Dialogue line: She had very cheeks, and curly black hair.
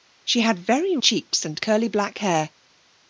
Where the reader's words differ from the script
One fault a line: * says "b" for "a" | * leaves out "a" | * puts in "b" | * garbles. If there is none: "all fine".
all fine